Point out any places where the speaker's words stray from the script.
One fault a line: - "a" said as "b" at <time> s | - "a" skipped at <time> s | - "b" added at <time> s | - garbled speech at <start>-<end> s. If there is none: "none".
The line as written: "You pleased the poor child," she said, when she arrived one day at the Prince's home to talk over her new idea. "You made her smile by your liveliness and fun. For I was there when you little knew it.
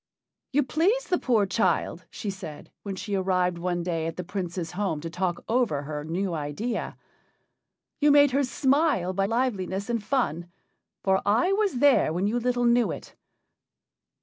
- "your" skipped at 9.2 s